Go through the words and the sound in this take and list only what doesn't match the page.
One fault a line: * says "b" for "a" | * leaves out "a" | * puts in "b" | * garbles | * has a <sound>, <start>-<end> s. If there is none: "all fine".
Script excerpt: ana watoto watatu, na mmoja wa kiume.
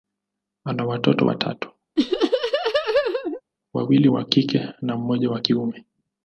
* has a laugh, 2.0-3.4 s
* puts in "wawili wa kike"